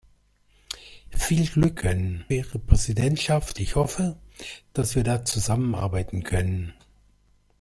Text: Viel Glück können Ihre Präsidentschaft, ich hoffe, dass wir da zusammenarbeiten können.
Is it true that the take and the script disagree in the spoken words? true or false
false